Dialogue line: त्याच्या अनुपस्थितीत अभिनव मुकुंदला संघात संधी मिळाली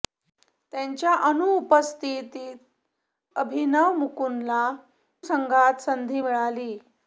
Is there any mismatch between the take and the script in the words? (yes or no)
no